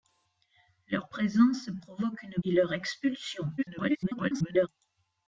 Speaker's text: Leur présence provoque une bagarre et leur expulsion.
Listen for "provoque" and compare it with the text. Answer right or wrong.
right